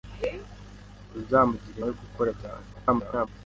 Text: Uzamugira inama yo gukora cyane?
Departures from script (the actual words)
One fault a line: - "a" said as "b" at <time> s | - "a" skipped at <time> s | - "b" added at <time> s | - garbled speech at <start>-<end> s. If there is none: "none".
- "inama" skipped at 1.8 s
- garbled speech at 2.7-3.3 s